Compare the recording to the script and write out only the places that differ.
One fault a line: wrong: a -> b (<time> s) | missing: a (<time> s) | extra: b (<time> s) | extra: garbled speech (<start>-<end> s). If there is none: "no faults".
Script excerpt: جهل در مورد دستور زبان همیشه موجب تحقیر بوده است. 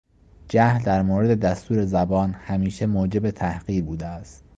no faults